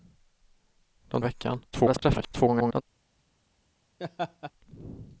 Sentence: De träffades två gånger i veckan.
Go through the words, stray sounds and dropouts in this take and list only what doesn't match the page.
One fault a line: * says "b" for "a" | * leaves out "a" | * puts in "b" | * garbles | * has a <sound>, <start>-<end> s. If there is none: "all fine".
* leaves out "träffades två gånger"
* garbles
* has a laugh, 4.0-4.5 s